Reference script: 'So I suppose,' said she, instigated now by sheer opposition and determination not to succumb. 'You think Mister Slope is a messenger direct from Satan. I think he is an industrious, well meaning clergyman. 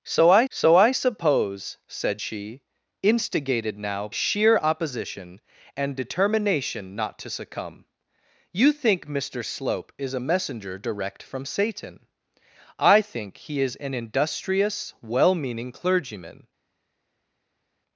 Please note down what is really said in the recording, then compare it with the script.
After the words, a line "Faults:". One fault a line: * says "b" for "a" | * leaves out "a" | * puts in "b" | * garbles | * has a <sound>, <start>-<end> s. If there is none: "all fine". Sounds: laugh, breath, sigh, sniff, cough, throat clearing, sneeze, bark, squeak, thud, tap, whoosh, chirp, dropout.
'So I so I suppose,' said she, instigated now sheer opposition and determination not to succumb. 'You think Mister Slope is a messenger direct from Satan. I think he is an industrious, well meaning clergyman.
Faults:
* puts in "so I"
* leaves out "by"